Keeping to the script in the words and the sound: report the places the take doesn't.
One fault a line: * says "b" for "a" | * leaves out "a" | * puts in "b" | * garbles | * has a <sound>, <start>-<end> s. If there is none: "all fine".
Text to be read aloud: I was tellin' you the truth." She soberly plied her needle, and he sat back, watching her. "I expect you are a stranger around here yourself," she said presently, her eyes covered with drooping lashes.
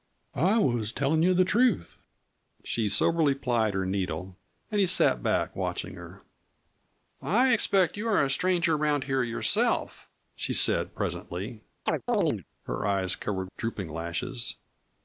* has a chirp, 11.9-12.4 s
* leaves out "with"